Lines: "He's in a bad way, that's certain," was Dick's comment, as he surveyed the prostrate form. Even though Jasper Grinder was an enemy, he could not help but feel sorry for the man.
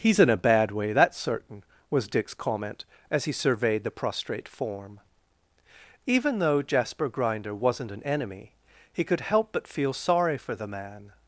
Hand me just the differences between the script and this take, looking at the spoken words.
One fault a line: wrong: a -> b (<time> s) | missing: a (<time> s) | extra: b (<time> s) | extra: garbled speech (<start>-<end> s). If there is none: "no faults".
wrong: was -> wasn't (7.5 s)
missing: not (9.2 s)